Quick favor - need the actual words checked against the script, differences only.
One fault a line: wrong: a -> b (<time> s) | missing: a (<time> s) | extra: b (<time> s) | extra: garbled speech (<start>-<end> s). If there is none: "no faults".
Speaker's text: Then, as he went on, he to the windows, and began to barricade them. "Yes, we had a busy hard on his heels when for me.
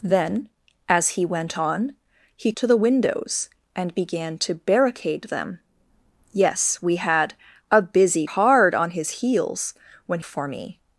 no faults